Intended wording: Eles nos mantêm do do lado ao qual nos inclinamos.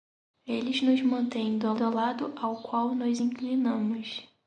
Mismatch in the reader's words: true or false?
false